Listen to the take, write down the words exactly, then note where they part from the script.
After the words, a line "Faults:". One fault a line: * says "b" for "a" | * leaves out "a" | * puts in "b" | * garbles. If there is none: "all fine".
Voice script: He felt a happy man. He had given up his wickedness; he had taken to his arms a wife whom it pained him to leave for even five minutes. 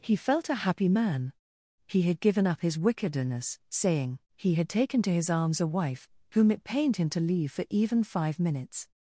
He felt a happy man. He had given up his wickedness; saying he had taken to his arms a wife whom it pained him to leave for even five minutes.
Faults:
* puts in "saying"